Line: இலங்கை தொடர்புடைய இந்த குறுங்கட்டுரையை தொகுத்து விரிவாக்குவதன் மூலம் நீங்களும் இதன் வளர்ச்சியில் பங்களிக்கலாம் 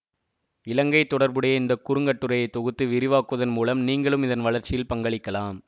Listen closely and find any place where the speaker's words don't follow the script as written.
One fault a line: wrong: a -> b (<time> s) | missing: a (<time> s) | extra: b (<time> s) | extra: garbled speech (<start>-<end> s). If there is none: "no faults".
no faults